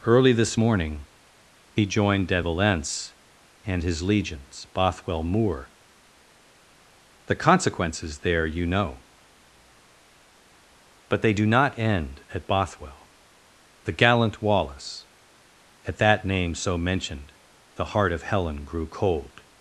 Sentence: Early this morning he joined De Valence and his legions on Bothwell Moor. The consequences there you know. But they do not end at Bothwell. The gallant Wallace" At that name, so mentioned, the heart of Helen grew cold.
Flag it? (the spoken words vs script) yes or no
yes